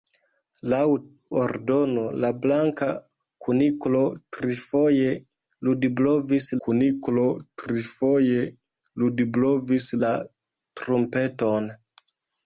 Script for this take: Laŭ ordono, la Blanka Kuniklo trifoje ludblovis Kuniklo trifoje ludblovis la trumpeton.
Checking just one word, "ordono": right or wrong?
right